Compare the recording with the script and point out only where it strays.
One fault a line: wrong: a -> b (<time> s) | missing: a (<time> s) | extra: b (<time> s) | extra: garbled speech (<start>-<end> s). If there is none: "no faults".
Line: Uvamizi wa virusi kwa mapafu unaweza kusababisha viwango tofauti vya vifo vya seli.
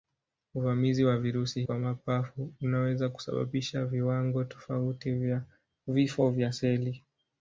no faults